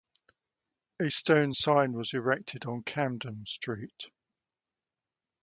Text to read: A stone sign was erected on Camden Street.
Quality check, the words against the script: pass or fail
pass